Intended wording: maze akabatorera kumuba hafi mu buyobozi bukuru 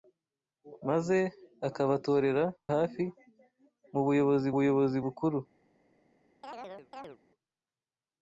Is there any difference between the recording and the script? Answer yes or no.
yes